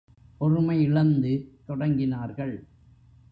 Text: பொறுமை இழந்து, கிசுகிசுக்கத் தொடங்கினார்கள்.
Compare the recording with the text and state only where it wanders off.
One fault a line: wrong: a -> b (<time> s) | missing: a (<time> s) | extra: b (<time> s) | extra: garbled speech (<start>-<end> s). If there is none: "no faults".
missing: கிசுகிசுக்கத் (1.3 s)